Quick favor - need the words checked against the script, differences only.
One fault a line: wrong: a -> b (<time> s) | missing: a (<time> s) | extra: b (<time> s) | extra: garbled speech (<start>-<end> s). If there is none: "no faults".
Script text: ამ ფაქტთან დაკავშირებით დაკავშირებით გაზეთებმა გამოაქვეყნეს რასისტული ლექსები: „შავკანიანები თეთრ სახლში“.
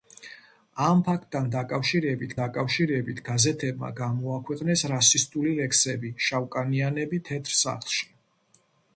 no faults